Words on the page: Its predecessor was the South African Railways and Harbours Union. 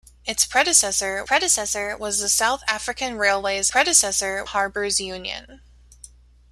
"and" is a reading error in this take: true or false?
true